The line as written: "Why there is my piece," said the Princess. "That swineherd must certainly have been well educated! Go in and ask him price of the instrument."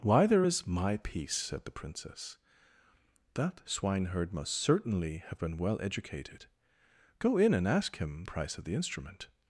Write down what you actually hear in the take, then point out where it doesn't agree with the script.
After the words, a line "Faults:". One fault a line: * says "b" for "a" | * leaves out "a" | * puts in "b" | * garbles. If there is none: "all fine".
"Why there is my piece," said the Princess. "That swineherd must certainly have been well educated! Go in and ask him price of the instrument."
Faults:
all fine